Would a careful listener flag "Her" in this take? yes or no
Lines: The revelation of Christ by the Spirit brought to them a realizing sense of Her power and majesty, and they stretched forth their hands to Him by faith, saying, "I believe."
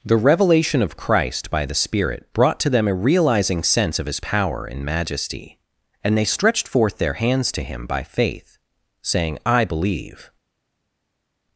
yes